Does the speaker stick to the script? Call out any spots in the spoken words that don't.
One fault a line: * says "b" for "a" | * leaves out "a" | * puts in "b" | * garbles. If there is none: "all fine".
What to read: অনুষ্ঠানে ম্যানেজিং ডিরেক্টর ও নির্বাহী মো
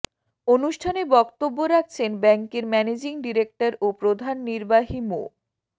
* puts in "বক্তব্য রাখছেন ব্যাংকের"
* puts in "প্রধান"